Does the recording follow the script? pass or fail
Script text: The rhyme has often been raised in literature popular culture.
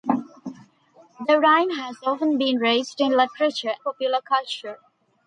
pass